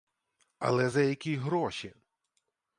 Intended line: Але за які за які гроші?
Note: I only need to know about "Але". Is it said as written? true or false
true